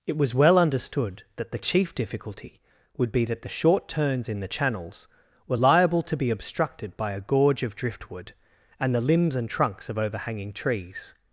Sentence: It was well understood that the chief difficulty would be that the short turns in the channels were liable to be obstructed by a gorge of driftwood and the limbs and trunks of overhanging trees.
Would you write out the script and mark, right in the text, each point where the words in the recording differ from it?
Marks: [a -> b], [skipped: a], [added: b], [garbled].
It was well understood that the chief difficulty would be that the short turns in the channels were liable to be obstructed by a gorge of driftwood and the limbs and trunks of overhanging trees.